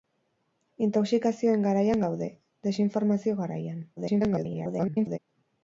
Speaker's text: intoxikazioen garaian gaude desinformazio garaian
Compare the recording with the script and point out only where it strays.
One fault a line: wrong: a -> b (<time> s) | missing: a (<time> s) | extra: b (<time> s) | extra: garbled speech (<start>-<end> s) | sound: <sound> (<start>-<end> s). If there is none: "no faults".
extra: garbled speech (4.0-5.2 s)